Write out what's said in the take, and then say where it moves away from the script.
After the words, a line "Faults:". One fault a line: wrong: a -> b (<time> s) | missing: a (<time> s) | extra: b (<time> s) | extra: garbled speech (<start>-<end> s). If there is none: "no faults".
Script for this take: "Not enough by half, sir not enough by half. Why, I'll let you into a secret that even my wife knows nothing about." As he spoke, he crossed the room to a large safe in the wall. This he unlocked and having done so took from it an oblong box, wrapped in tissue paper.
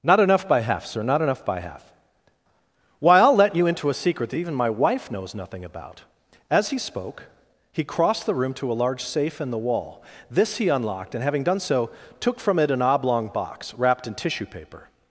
"Not enough by half, sir not enough by half. Why, I'll let you into a secret that even my wife knows nothing about." As he spoke, he crossed the room to a large safe in the wall. This he unlocked and having done so took from it an oblong box, wrapped in tissue paper.
Faults:
no faults